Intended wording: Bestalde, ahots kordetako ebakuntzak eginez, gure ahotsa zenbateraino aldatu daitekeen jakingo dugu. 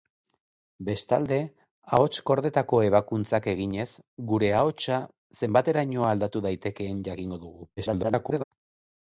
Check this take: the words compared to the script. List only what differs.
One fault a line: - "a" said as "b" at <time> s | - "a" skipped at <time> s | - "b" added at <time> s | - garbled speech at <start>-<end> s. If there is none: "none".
- garbled speech at 7.8-8.4 s